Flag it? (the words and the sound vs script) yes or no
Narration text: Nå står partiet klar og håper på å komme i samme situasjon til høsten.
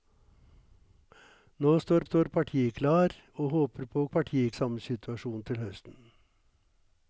yes